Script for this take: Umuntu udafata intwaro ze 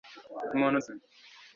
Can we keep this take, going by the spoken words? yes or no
no